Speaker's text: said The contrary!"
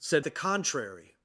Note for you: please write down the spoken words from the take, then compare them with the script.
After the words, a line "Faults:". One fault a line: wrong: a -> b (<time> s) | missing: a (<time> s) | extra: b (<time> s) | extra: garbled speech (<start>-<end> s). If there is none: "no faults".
said The contrary!"
Faults:
no faults